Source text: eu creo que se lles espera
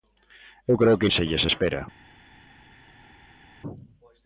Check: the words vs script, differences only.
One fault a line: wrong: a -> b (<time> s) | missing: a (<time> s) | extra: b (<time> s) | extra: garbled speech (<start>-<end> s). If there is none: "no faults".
no faults